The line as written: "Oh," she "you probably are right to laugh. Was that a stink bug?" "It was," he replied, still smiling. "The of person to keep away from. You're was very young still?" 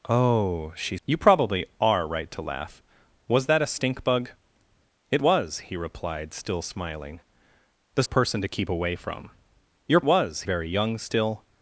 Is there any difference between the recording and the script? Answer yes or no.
no